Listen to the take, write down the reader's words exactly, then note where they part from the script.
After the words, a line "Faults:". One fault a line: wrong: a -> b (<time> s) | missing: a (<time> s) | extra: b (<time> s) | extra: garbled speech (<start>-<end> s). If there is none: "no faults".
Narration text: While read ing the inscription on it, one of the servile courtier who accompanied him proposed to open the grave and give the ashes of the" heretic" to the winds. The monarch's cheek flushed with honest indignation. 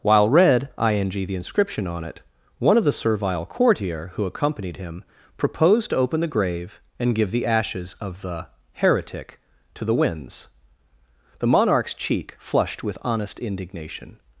While read ing the inscription on it, one of the servile courtier who accompanied him proposed to open the grave and give the ashes of the" heretic" to the winds. The monarch's cheek flushed with honest indignation.
Faults:
no faults